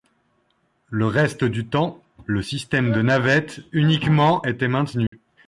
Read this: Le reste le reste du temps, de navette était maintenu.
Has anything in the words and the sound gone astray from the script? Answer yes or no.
yes